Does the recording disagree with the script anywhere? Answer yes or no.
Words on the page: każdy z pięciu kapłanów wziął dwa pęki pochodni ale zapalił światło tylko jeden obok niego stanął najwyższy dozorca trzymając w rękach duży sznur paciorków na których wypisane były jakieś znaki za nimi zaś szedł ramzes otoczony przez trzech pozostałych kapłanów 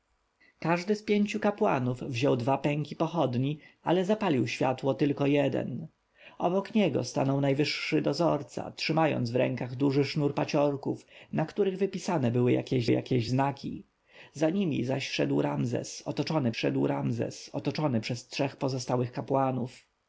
yes